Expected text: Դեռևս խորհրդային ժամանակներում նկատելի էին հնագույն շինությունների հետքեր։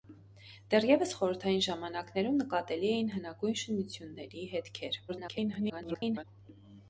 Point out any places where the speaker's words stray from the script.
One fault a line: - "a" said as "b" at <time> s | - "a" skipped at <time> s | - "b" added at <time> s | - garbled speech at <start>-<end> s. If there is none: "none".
- garbled speech at 5.1-6.2 s